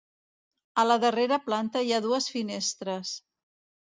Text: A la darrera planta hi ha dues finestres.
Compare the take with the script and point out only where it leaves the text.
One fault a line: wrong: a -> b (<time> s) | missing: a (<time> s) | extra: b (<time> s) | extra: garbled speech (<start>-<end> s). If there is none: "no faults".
no faults